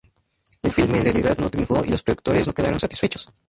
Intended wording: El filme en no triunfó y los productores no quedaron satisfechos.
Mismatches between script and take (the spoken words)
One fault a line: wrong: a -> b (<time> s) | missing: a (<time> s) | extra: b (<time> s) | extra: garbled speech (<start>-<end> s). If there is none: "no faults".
extra: realidad (1.0 s)